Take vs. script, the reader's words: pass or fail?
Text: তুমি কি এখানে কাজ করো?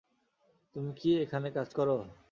pass